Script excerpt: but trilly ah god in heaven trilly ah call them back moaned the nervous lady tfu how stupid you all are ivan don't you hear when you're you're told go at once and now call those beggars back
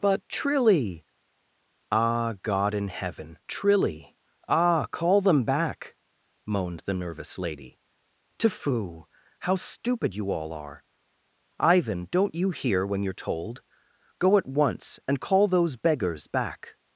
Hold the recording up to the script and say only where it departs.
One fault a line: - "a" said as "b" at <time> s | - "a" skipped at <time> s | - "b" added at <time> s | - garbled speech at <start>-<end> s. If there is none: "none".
- "you're" skipped at 13.1 s
- "now" skipped at 15.2 s